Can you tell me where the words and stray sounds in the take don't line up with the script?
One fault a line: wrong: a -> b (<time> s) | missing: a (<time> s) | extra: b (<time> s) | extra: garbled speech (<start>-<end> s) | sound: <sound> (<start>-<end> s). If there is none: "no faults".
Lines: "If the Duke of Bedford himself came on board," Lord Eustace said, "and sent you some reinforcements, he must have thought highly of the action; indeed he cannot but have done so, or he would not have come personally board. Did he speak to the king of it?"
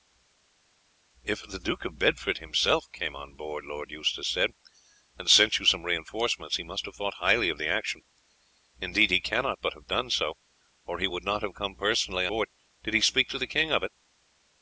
no faults